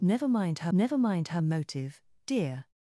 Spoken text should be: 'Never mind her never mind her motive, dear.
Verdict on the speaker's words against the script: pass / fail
pass